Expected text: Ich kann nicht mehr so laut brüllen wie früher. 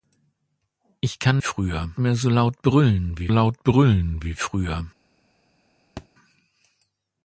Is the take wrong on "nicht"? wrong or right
wrong